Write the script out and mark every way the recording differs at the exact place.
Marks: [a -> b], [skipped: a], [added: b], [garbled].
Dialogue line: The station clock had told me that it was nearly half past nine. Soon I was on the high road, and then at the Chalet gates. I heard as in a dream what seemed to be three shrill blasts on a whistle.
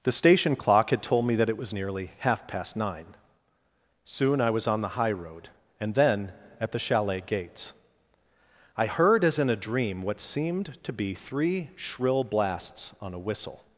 The station clock had told me that it was nearly half past nine. Soon I was on the high road, and then at the Chalet gates. I heard as in a dream what seemed to be three shrill blasts on a whistle.